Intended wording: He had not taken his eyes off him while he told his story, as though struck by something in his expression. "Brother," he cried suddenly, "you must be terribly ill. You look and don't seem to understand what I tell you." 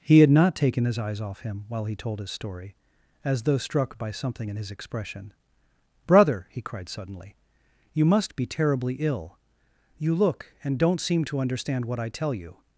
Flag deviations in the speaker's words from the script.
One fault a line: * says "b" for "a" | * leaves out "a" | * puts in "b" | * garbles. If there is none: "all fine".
all fine